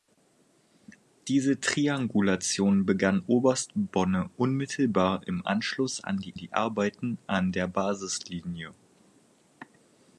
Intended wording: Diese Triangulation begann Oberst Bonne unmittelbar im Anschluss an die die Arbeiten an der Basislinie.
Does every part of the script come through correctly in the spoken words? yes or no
yes